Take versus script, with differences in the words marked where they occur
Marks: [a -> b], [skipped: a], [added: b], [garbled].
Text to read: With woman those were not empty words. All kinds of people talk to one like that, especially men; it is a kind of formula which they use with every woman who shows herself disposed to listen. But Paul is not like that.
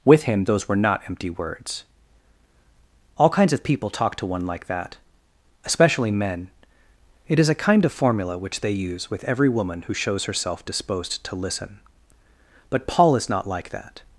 With [woman -> him] those were not empty words. All kinds of people talk to one like that, especially men; it is a kind of formula which they use with every woman who shows herself disposed to listen. But Paul is not like that.